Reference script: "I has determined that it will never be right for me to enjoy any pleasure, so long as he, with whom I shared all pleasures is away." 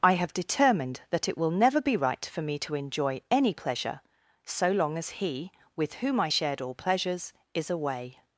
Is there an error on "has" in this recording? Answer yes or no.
yes